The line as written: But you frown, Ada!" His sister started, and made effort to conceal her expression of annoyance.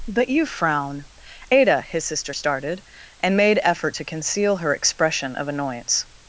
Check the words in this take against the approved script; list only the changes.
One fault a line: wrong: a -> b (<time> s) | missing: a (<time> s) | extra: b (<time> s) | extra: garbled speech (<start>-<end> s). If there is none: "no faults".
no faults